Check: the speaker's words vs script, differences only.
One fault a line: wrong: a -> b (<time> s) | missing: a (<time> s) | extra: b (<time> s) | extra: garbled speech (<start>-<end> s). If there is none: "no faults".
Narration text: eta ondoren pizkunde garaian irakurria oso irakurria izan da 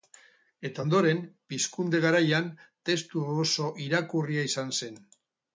wrong: irakurria -> testu (2.9 s)
wrong: da -> zen (4.8 s)